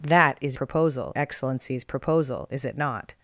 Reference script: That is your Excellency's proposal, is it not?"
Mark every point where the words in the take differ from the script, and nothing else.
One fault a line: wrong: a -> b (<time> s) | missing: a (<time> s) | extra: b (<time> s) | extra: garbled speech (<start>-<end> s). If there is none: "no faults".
wrong: your -> proposal (0.5 s)